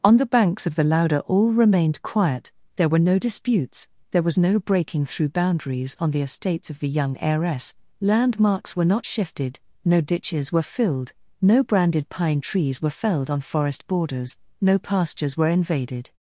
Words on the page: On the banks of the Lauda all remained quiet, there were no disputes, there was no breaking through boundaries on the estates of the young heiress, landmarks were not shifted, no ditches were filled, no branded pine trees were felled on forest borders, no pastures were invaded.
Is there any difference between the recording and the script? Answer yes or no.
no